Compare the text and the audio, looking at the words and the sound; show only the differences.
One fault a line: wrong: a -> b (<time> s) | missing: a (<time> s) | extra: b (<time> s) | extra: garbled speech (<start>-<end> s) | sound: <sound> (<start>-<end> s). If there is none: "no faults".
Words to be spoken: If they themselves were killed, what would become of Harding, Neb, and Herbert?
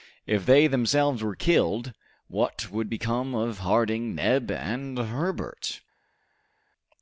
no faults